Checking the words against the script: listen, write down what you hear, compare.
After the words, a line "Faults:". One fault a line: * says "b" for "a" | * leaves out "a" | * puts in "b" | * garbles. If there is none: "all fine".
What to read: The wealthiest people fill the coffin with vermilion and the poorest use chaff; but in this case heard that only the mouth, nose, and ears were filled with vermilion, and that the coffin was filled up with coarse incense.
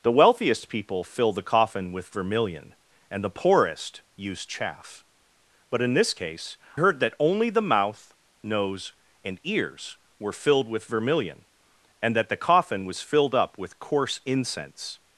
The wealthiest people fill the coffin with vermilion and the poorest use chaff; but in this case heard that only the mouth, nose, and ears were filled with vermilion, and that the coffin was filled up with coarse incense.
Faults:
all fine